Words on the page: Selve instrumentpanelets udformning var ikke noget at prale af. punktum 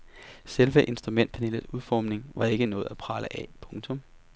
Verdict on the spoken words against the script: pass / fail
pass